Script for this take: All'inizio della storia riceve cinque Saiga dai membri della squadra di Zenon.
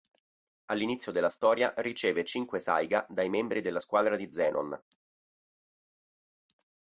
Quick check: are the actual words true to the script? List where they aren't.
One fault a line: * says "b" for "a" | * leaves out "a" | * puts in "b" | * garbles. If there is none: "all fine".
all fine